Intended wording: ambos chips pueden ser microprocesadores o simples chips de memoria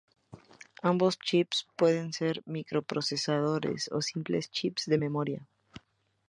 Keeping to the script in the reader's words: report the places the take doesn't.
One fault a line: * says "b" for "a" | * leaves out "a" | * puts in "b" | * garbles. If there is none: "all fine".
all fine